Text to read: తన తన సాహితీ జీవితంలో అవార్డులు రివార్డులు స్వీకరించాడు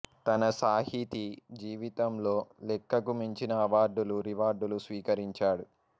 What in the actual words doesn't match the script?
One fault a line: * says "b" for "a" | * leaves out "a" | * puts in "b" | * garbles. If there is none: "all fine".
* leaves out "తన"
* puts in "లెక్కకు మించిన"